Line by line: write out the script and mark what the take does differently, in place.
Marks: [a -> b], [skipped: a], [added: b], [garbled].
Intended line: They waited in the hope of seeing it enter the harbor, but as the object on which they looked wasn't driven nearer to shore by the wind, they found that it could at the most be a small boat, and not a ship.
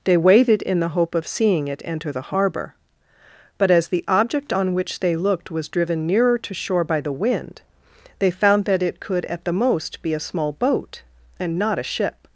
They waited in the hope of seeing it enter the harbor, but as the object on which they looked [wasn't -> was] driven nearer to shore by the wind, they found that it could at the most be a small boat, and not a ship.